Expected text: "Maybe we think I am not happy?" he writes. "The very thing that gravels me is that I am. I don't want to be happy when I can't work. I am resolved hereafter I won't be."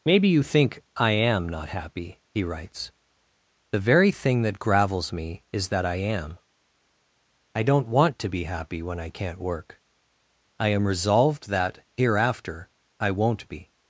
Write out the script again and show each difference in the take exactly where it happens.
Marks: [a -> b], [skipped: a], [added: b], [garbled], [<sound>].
"Maybe [we -> you] think I am not happy?" he writes. "The very thing that gravels me is that I am. I don't want to be happy when I can't work. I am resolved [added: that] hereafter I won't be."